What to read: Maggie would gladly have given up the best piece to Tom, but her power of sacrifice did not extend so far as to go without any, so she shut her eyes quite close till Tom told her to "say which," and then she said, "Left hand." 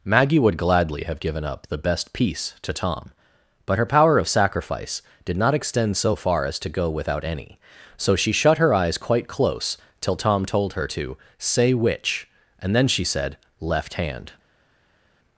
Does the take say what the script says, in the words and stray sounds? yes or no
yes